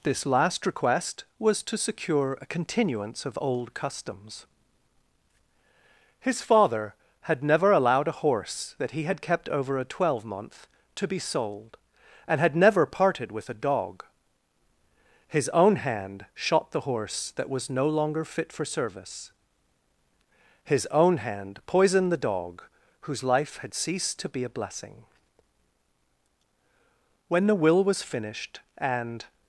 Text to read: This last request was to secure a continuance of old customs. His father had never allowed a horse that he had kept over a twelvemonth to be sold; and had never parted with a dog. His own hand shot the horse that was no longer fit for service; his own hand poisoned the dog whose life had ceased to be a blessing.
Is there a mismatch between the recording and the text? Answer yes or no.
yes